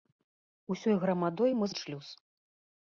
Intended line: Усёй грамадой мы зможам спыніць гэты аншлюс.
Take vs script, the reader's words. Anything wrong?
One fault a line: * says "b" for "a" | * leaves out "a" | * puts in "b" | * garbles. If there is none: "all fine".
* leaves out "зможам спыніць гэты"